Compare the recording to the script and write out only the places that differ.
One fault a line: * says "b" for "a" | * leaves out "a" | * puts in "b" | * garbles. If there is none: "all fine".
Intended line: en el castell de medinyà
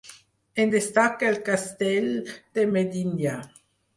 * puts in "destaca"